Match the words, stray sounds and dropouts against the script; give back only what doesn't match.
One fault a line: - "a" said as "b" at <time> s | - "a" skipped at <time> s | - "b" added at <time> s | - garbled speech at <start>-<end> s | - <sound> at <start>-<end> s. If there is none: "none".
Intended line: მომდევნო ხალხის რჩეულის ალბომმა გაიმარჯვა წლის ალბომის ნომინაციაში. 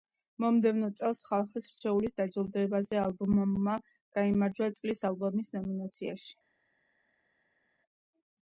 - "წელს" added at 1.0 s
- "დაჯილდოებაზე" added at 2.2 s